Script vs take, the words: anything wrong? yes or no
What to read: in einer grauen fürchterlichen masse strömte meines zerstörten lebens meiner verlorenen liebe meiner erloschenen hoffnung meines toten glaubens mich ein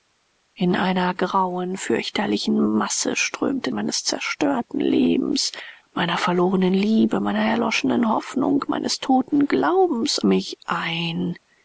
no